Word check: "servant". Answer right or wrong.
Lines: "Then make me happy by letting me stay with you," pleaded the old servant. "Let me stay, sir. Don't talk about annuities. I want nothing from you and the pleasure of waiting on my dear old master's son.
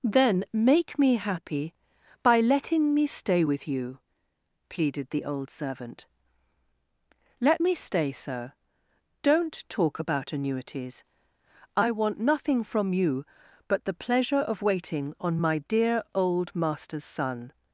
right